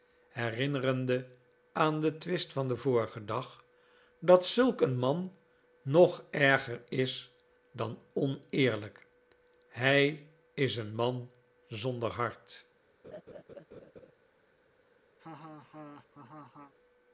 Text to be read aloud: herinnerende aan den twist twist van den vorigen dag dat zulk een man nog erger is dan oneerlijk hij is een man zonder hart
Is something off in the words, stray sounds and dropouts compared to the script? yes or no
yes